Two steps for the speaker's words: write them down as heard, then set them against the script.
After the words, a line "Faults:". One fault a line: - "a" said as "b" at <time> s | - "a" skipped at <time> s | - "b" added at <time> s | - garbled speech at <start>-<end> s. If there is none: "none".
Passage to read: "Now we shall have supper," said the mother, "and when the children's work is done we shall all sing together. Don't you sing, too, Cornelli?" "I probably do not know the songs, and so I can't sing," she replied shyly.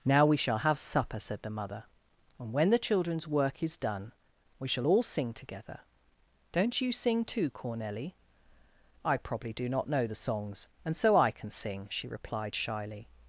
"Now we shall have supper," said the mother, "and when the children's work is done we shall all sing together. Don't you sing, too, Cornelli?" "I probably do not know the songs, and so I can sing," she replied shyly.
Faults:
- "can't" said as "can" at 11.3 s